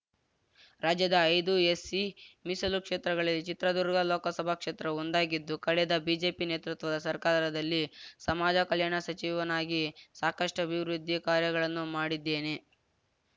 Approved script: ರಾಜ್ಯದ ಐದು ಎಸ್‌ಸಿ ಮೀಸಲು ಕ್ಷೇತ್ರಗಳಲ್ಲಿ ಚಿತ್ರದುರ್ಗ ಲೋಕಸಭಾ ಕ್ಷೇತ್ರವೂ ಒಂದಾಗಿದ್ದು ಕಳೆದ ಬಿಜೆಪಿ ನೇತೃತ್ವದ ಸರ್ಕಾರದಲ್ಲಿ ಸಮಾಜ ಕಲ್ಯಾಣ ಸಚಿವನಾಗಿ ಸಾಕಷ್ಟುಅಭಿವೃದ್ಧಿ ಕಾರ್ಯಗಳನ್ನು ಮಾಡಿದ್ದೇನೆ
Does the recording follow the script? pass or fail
pass